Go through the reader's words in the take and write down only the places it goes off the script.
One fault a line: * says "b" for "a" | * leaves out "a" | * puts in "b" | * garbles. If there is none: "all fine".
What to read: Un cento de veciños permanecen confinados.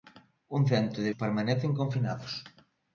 * leaves out "veciños"